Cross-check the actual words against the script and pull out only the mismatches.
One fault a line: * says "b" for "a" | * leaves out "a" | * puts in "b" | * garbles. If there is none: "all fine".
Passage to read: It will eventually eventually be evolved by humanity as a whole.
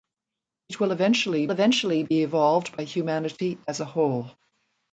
all fine